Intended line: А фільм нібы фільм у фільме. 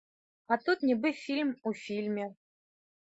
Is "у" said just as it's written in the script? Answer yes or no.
yes